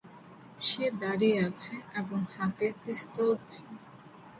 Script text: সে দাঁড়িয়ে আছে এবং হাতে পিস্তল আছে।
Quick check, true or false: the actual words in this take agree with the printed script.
true